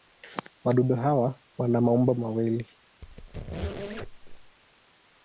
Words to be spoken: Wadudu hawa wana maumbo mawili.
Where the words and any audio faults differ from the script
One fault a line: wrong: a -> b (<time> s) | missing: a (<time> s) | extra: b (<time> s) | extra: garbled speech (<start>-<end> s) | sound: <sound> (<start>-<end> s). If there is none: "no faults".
sound: squeak (3.0-4.6 s)